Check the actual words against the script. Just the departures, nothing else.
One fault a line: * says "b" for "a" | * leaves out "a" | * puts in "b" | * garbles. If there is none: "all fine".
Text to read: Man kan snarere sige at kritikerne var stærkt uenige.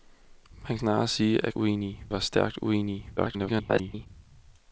* leaves out "kan"
* says "uenige" for "kritikerne"
* garbles